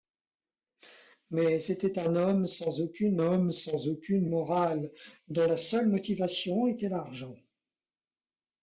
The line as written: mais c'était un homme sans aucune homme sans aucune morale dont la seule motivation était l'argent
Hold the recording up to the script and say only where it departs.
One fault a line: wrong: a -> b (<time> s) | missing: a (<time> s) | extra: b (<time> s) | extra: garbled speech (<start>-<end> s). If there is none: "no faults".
no faults